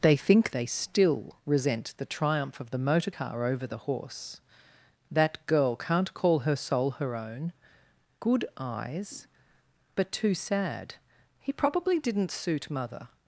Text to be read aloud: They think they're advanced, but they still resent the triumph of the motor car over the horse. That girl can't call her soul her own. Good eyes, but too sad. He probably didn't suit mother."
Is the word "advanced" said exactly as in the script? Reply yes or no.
no